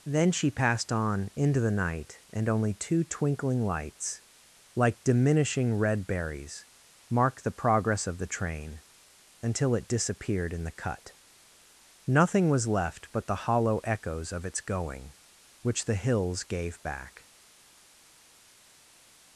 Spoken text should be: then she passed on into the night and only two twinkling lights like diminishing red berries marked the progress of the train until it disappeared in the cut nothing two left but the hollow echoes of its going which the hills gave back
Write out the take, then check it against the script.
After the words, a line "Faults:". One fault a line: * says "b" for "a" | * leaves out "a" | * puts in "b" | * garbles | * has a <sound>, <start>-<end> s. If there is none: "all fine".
then she passed on into the night and only two twinkling lights like diminishing red berries marked the progress of the train until it disappeared in the cut nothing was left but the hollow echoes of its going which the hills gave back
Faults:
* says "was" for "two"